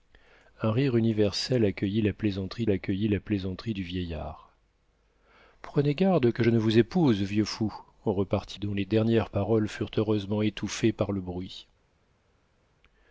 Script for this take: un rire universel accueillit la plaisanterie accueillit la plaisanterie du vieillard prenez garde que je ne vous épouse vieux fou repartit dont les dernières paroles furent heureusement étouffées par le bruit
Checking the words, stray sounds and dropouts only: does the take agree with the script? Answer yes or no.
yes